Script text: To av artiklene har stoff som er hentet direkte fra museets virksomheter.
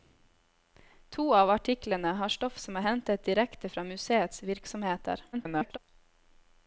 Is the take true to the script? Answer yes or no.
no